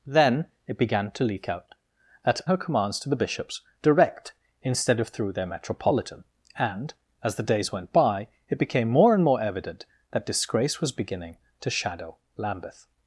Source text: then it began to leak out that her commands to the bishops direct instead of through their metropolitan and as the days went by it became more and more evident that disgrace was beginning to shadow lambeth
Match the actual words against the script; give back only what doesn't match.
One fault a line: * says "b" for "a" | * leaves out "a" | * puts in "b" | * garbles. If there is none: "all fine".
all fine